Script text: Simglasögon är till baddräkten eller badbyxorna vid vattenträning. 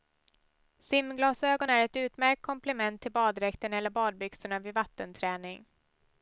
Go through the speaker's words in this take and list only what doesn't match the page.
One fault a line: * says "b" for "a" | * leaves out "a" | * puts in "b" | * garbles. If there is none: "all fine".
* puts in "ett utmärkt komplement"